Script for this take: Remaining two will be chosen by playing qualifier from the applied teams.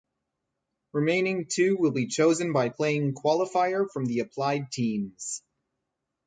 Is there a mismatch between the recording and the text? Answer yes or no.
no